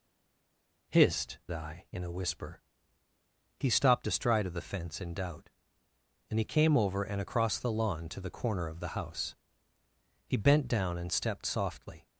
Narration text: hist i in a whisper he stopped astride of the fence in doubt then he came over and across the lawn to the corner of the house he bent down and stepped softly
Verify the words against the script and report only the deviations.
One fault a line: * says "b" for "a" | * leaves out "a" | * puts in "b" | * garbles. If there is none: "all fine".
all fine